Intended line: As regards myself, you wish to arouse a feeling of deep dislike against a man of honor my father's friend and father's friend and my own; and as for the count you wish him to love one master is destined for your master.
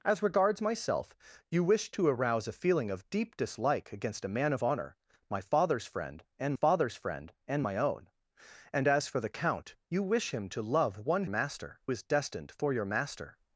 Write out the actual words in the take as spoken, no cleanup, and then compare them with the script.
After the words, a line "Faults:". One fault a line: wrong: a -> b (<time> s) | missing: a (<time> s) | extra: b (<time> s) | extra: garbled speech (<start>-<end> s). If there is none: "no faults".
As regards myself, you wish to arouse a feeling of deep dislike against a man of honor my father's friend and father's friend and my own; and as for the count you wish him to love one master is destined for your master.
Faults:
no faults